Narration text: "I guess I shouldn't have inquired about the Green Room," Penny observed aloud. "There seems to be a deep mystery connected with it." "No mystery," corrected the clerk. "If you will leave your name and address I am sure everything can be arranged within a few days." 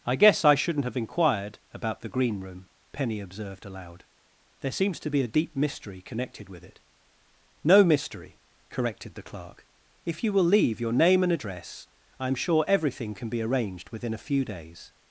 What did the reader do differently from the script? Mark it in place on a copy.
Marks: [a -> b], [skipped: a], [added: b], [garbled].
"I guess I shouldn't have inquired about the Green Room," Penny observed aloud. "There seems to be a deep mystery connected with it." "No mystery," corrected the clerk. "If you will leave your name and address I am sure everything can be arranged within a few days."